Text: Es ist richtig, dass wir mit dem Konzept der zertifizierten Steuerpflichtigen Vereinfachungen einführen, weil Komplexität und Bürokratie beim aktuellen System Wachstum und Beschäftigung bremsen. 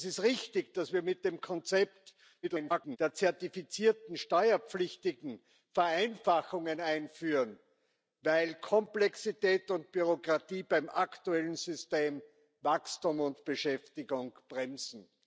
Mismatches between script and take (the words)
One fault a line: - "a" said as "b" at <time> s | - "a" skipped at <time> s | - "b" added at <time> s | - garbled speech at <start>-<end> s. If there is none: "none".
- garbled speech at 2.4-3.0 s